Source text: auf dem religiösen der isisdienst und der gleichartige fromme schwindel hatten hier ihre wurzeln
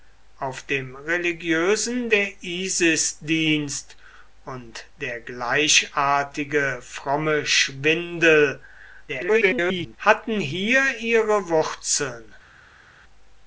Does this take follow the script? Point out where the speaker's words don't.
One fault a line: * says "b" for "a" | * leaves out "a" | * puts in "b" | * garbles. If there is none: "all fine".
* garbles